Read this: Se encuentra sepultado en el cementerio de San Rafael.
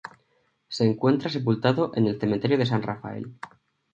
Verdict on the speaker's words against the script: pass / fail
pass